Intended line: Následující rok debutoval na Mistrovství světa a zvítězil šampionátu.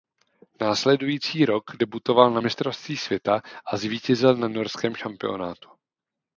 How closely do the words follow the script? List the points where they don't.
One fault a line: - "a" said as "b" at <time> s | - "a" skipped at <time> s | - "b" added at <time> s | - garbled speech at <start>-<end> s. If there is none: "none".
- "na norském" added at 4.4 s